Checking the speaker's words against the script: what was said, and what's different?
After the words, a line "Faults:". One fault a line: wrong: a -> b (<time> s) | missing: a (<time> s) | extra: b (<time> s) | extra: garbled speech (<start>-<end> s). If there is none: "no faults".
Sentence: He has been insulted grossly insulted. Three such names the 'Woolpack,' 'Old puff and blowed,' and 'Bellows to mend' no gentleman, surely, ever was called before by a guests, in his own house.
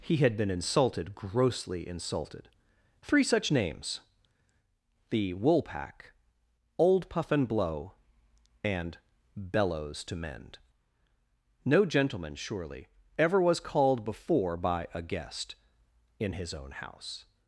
He had been insulted grossly insulted. Three such names the 'Woolpack,' 'Old puff and blow,' and 'Bellows to mend' no gentleman, surely, ever was called before by a guest, in his own house.
Faults:
wrong: has -> had (0.2 s)
wrong: blowed -> blow (7.5 s)
wrong: guests -> guest (15.0 s)